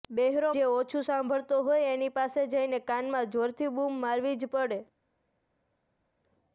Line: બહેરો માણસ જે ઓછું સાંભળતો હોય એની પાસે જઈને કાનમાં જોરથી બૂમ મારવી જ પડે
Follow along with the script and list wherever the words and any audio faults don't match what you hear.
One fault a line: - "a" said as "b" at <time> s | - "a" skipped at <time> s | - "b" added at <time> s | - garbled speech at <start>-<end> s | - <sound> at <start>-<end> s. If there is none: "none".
- "માણસ" skipped at 0.5 s